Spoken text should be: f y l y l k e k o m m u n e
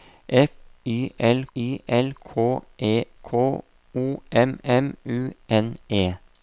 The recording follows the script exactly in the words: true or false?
true